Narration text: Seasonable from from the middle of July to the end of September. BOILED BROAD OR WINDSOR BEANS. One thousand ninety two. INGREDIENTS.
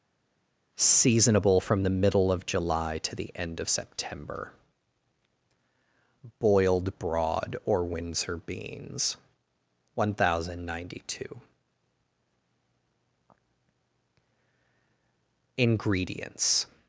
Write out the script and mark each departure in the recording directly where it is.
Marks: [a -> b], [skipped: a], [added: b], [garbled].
Seasonable from [skipped: from] the middle of July to the end of September. BOILED BROAD OR WINDSOR BEANS. One thousand ninety two. INGREDIENTS.